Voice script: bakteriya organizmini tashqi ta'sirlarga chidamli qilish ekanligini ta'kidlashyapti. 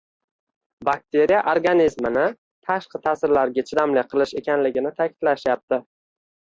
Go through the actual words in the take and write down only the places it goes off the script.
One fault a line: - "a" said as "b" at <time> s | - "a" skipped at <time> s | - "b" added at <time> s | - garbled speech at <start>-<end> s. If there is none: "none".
none